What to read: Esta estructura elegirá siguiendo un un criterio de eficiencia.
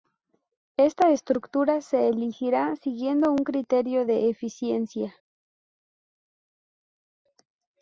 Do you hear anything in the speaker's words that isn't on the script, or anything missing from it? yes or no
yes